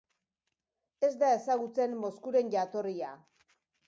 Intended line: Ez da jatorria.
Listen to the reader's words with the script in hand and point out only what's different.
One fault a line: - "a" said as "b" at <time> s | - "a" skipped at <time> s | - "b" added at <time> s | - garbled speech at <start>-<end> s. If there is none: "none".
- "ezagutzen Moskuren" added at 1.4 s